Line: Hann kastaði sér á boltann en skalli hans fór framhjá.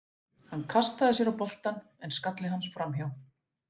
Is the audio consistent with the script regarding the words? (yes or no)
no